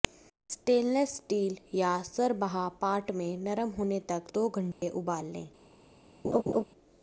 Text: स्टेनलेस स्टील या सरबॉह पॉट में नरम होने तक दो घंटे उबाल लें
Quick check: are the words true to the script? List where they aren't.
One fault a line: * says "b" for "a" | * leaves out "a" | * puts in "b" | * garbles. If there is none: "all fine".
all fine